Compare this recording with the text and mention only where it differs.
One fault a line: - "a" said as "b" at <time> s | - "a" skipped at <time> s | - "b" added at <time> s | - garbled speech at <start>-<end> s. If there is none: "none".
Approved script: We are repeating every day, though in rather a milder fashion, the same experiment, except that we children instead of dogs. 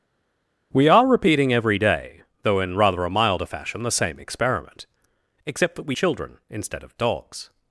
none